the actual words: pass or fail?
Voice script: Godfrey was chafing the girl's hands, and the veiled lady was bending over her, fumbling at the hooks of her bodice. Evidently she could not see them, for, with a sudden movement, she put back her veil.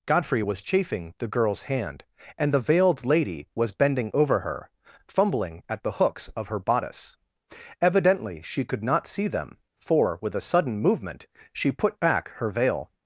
fail